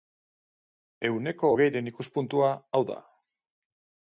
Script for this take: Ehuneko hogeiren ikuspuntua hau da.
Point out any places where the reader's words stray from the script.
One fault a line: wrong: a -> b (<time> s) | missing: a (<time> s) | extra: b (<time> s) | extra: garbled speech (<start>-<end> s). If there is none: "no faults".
no faults